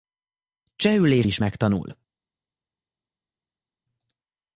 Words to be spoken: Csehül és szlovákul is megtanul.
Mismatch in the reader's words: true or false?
true